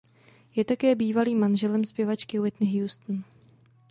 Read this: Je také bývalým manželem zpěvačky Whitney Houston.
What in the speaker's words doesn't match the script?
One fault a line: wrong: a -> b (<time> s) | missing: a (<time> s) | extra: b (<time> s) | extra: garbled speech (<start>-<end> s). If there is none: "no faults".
no faults